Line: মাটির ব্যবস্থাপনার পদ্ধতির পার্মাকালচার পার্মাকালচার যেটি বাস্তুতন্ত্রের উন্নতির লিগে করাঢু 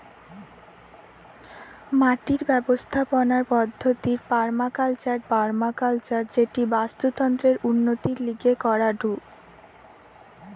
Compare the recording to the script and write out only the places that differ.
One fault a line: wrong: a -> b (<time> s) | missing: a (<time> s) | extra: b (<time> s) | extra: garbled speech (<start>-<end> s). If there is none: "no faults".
no faults